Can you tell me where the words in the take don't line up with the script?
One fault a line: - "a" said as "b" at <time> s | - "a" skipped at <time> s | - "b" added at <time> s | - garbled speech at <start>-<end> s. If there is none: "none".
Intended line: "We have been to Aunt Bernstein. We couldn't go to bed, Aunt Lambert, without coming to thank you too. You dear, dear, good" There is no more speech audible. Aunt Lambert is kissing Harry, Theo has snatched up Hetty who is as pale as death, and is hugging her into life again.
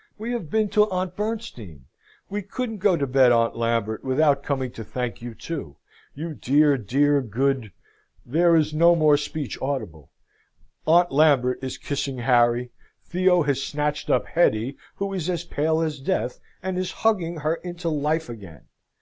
none